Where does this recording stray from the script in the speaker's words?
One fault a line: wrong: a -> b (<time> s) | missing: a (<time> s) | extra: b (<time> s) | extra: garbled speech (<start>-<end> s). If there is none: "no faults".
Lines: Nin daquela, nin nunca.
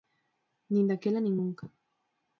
no faults